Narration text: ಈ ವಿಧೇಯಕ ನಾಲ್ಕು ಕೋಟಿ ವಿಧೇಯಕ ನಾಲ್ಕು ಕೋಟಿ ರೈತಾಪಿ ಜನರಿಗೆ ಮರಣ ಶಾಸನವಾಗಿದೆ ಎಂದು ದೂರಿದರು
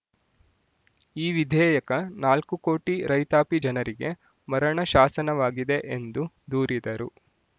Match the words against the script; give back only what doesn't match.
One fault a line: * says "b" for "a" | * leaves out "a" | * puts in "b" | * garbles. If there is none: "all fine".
* leaves out "ವಿಧೇಯಕ ನಾಲ್ಕು ಕೋಟಿ"